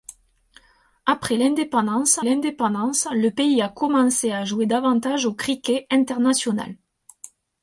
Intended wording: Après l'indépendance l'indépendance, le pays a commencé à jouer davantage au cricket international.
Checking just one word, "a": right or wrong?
right